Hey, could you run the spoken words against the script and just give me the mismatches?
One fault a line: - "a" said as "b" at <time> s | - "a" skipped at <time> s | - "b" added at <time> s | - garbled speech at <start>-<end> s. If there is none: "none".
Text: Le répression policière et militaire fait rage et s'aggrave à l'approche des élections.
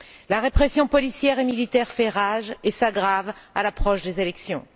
- "Le" said as "La" at 0.3 s